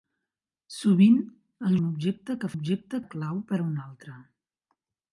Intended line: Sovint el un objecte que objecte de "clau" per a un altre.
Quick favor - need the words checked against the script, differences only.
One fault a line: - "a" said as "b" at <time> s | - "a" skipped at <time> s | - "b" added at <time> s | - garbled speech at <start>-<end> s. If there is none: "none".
none